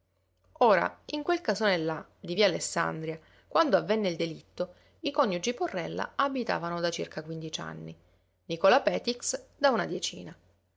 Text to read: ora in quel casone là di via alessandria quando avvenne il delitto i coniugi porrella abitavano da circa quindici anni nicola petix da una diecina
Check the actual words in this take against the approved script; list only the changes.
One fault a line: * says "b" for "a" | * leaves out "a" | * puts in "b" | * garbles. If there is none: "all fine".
all fine